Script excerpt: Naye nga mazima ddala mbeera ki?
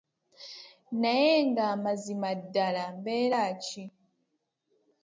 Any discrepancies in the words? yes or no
no